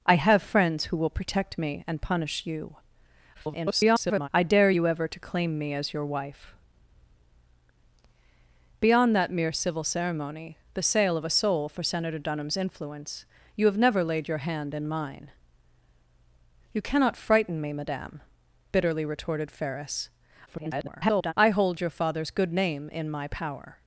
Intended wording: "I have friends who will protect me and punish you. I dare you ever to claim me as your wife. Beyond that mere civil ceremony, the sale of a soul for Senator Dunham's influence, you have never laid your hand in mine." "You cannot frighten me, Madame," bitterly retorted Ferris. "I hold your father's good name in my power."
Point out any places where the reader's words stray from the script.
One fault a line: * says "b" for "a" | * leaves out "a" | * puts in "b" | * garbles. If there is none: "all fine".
* garbles
* garbles